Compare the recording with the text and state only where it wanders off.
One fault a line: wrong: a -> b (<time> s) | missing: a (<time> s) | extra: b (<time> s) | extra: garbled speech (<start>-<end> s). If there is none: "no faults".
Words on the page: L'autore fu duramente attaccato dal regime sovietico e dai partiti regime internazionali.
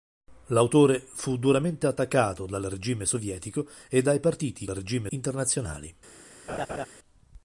no faults